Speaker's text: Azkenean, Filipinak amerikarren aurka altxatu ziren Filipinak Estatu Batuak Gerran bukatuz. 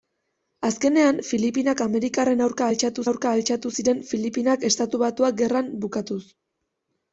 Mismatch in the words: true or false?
true